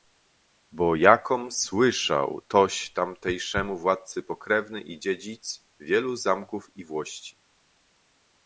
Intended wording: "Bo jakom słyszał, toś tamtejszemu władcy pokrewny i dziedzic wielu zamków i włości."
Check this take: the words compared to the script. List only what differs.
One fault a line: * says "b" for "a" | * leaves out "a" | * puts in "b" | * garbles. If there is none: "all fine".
all fine